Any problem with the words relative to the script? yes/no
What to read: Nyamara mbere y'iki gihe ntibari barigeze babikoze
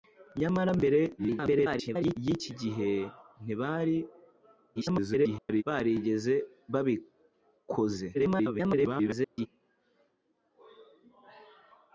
yes